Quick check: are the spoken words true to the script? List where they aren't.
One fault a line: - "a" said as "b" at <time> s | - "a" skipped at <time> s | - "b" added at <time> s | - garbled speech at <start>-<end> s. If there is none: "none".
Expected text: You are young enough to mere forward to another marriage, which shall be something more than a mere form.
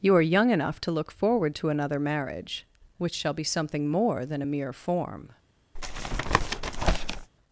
- "mere" said as "look" at 0.9 s